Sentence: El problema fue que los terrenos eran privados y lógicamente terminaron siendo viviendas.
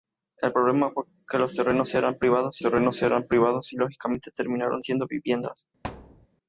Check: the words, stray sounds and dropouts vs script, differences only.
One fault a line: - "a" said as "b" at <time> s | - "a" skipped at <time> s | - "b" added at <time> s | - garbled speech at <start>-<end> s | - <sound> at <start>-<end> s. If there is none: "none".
- "terrenos eran privados" added at 2.6 s
- thud at 5.8-6.3 s